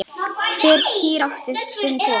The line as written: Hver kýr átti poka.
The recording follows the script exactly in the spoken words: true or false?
false